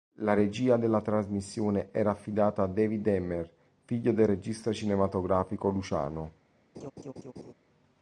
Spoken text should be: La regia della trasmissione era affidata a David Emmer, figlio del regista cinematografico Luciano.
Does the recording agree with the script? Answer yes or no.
yes